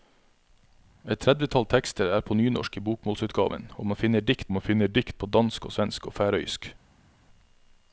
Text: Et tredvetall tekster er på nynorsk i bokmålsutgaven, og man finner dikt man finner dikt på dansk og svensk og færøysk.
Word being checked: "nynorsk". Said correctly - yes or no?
yes